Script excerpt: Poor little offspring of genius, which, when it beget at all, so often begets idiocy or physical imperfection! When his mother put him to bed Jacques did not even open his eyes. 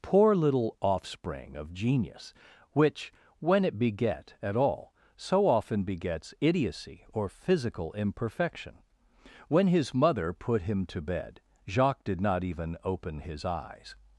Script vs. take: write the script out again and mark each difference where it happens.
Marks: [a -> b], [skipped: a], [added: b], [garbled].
Poor little offspring of genius, which, when it beget at all, so often begets idiocy or physical imperfection! When his mother put him to bed Jacques did not even open his eyes.